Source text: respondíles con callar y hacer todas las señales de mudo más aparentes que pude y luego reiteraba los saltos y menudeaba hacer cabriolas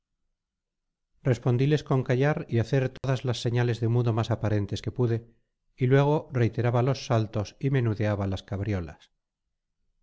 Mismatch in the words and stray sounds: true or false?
true